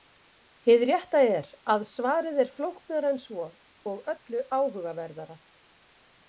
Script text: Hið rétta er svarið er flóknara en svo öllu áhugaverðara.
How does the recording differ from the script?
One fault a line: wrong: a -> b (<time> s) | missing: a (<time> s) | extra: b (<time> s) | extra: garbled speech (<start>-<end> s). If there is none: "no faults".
extra: að (1.7 s)
extra: og (3.9 s)